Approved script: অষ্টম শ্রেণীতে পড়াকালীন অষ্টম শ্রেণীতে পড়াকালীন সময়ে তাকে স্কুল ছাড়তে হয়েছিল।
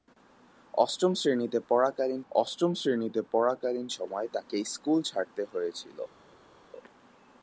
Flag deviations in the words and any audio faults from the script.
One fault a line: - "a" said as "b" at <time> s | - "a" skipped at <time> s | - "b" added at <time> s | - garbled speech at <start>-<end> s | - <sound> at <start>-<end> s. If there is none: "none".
none